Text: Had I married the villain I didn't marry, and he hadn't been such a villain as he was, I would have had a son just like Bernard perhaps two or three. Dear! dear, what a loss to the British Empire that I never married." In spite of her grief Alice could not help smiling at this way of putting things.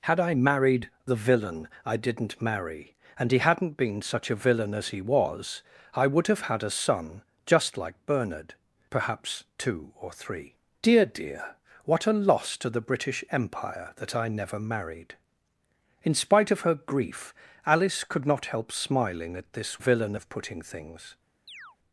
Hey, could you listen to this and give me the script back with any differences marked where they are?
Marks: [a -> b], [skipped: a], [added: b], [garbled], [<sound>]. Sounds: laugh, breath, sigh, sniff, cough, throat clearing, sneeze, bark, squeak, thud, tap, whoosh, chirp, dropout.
Had I married the villain I didn't marry, and he hadn't been such a villain as he was, I would have had a son just like Bernard perhaps two or three. Dear! dear, what a loss to the British Empire that I never married." In spite of her grief Alice could not help smiling at this [way -> villain] of putting things. [chirp]